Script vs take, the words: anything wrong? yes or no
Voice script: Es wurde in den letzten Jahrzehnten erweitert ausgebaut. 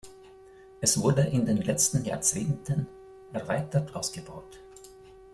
no